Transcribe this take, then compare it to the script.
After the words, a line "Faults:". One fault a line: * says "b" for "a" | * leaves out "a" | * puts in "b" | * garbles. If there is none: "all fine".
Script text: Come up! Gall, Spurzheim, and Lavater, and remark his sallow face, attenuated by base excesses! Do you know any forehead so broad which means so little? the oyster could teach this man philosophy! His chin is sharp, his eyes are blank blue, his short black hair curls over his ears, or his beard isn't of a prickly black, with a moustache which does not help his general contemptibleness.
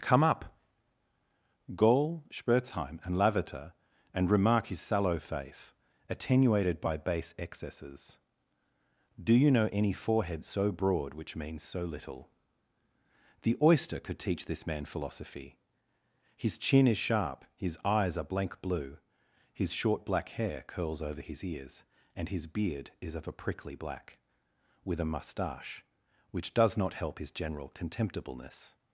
Come up! Gall, Spurzheim, and Lavater, and remark his sallow face, attenuated by base excesses! Do you know any forehead so broad which means so little? the oyster could teach this man philosophy! His chin is sharp, his eyes are blank blue, his short black hair curls over his ears, and his beard is of a prickly black, with a moustache which does not help his general contemptibleness.
Faults:
* says "and" for "or"
* says "is" for "isn't"